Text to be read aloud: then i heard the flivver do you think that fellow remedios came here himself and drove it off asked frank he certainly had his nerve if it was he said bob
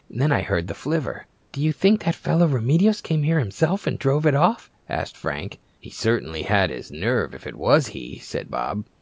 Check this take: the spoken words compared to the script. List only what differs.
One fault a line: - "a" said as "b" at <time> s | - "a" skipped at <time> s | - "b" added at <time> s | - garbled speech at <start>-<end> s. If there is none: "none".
none